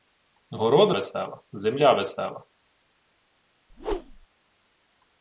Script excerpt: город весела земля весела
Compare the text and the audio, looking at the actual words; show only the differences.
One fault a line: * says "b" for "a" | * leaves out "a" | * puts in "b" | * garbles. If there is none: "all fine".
all fine